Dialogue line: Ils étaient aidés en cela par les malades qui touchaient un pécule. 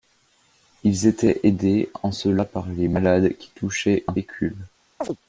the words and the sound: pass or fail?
fail